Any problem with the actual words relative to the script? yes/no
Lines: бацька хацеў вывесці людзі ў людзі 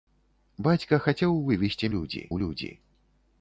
no